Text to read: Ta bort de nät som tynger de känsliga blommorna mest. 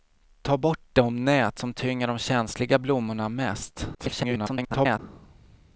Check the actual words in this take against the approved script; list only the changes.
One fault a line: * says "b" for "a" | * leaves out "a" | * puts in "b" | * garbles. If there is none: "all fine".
* garbles